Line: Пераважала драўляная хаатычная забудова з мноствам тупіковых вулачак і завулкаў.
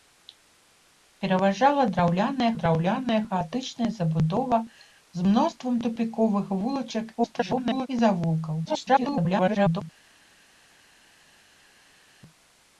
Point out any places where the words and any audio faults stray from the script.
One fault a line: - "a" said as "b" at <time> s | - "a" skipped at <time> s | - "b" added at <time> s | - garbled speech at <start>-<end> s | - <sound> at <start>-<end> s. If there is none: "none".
- "драўляная" added at 2.6 s
- garbled speech at 7.2-7.9 s
- garbled speech at 8.6-9.8 s